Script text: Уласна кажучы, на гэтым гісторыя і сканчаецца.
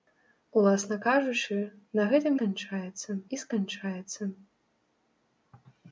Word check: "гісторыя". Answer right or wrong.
wrong